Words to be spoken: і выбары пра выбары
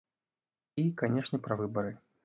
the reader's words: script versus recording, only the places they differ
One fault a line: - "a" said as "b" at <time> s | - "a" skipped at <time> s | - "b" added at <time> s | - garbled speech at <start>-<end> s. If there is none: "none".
- "выбары" said as "канешне" at 1.0 s